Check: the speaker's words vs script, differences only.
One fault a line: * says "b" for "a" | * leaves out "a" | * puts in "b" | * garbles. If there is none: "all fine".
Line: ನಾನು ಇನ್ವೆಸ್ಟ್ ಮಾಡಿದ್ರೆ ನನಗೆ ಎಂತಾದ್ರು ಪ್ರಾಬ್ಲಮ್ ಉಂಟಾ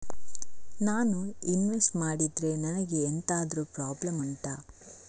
all fine